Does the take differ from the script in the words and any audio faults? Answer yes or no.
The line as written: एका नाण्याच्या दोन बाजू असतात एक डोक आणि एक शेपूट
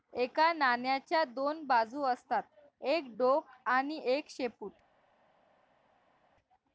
no